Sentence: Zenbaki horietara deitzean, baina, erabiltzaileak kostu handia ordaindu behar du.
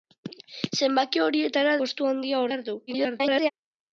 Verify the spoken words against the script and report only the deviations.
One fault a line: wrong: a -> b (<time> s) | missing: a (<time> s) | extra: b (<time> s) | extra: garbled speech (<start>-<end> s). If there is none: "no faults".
missing: deitzean baina erabiltzaileak (1.8 s)
missing: ordaindu (2.5 s)
extra: garbled speech (2.9-3.5 s)